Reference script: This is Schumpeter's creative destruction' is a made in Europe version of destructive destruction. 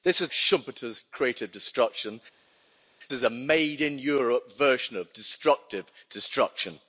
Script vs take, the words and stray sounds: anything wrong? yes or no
no